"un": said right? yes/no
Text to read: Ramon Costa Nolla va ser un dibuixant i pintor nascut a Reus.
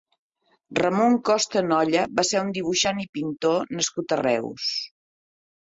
yes